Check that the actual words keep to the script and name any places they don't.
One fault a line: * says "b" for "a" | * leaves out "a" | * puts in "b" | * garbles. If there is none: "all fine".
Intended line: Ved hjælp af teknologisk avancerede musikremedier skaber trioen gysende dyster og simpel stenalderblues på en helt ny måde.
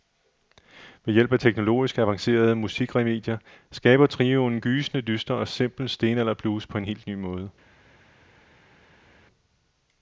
all fine